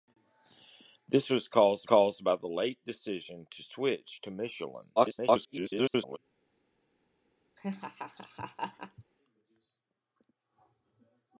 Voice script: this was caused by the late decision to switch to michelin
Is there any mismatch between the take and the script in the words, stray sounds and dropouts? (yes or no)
yes